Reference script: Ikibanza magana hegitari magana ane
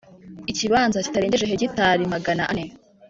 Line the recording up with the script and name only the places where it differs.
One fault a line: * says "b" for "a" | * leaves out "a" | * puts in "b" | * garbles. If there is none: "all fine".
* says "kitarengeje" for "magana"